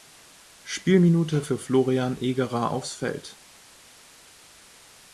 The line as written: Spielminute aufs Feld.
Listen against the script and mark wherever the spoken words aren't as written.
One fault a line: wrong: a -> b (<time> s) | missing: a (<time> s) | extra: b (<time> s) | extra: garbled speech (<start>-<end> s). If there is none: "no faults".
extra: für Florian Egerer (1.4 s)